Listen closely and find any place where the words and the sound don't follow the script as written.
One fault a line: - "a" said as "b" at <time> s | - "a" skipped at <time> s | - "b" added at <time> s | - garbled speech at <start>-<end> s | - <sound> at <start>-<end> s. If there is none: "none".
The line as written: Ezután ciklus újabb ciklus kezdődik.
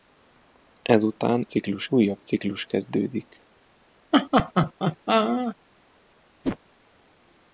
- laugh at 4.1-5.6 s
- whoosh at 6.4-6.6 s